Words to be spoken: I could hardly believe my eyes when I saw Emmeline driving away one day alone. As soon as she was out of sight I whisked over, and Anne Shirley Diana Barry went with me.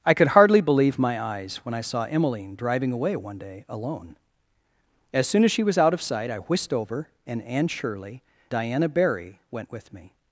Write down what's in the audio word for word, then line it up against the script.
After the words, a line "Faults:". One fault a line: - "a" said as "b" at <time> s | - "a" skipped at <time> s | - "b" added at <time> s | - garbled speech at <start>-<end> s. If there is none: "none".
I could hardly believe my eyes when I saw Emmeline driving away one day alone. As soon as she was out of sight I whisked over, and Anne Shirley Diana Barry went with me.
Faults:
none